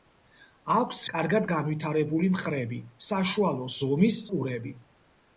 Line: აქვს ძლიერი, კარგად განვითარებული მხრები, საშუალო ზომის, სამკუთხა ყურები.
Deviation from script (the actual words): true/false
true